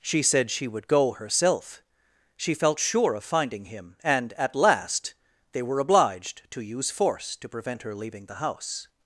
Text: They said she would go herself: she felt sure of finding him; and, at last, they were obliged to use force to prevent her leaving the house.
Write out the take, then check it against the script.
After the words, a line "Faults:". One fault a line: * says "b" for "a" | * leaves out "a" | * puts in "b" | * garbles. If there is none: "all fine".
She said she would go herself: she felt sure of finding him; and, at last, they were obliged to use force to prevent her leaving the house.
Faults:
* says "She" for "They"